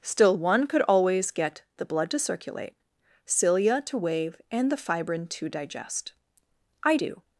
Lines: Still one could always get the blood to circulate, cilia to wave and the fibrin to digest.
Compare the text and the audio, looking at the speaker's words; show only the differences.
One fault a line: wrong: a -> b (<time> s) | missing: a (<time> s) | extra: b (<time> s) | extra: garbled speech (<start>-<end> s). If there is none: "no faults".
extra: I do (6.8 s)